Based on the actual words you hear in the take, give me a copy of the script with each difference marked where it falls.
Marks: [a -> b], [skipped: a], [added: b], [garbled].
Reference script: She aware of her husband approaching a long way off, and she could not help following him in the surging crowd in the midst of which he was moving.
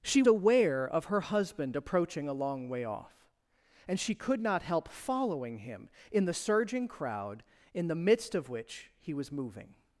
She aware of her husband approaching a long way off, and she could not help following him in the surging crowd in the midst of which he was moving.